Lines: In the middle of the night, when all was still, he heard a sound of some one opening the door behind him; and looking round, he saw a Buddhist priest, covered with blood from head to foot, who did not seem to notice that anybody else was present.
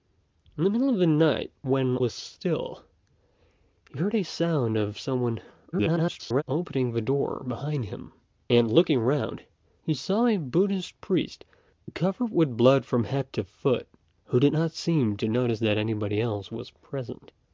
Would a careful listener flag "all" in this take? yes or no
yes